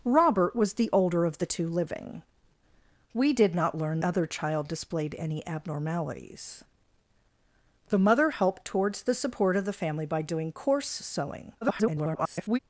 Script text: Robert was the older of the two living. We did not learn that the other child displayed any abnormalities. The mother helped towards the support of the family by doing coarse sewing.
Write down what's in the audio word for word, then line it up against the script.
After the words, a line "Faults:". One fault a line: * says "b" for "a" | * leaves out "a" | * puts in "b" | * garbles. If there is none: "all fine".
Robert was the older of the two living. We did not learn other child displayed any abnormalities. The mother helped towards the support of the family by doing coarse sewing. [garbled]
Faults:
* leaves out "that the"
* garbles